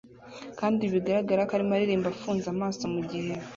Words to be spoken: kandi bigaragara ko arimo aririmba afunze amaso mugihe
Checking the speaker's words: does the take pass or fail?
pass